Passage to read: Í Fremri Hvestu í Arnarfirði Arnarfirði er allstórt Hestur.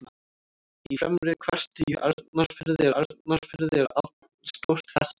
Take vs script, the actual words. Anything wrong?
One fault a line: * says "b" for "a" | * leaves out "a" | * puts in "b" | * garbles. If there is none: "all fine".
all fine